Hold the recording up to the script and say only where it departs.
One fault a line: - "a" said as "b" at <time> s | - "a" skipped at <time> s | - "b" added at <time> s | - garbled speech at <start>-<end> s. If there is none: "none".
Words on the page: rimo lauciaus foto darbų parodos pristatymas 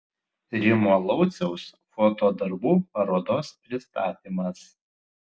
none